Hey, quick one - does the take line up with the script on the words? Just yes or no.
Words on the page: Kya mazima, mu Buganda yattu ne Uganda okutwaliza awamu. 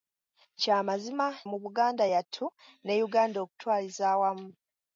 yes